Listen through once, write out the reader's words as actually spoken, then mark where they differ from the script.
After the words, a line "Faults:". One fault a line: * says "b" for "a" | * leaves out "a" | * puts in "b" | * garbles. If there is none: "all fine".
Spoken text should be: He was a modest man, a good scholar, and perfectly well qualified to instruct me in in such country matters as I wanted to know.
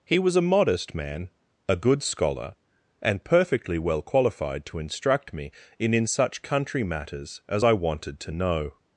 He was a modest man, a good scholar, and perfectly well qualified to instruct me in in such country matters as I wanted to know.
Faults:
all fine